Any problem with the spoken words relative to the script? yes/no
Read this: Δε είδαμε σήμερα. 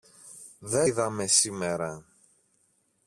no